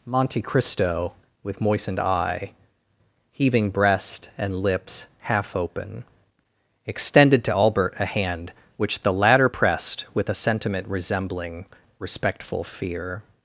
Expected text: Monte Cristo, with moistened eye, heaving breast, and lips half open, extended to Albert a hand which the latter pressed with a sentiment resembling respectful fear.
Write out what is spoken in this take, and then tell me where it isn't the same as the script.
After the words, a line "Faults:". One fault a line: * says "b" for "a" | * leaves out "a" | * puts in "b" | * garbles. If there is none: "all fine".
Monte Cristo, with moistened eye, heaving breast, and lips half open, extended to Albert a hand which the latter pressed with a sentiment resembling respectful fear.
Faults:
all fine